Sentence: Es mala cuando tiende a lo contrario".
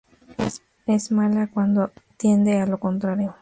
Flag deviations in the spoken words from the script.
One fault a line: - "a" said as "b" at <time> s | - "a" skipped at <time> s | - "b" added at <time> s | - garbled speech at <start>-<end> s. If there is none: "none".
none